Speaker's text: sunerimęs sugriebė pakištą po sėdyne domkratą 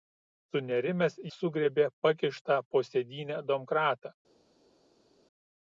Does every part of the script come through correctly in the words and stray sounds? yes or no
yes